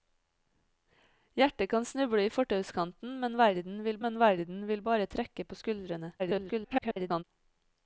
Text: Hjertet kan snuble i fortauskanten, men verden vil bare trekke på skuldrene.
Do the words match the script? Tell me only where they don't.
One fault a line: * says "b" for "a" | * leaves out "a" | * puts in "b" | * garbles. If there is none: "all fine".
* puts in "men verden vil"
* garbles